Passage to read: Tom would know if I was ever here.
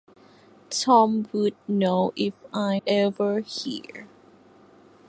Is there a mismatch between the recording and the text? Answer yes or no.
yes